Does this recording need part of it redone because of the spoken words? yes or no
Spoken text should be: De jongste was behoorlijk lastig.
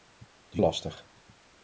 yes